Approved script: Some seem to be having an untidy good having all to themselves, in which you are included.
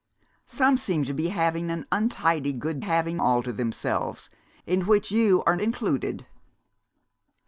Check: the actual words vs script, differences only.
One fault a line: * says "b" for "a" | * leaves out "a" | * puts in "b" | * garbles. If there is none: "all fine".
all fine